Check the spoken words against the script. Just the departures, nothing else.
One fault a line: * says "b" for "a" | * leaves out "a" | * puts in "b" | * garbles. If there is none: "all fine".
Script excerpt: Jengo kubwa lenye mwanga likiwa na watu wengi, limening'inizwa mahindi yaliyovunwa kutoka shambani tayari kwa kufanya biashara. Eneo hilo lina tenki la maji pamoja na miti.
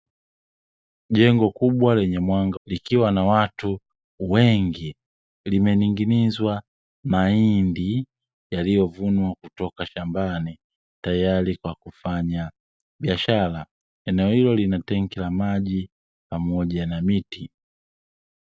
all fine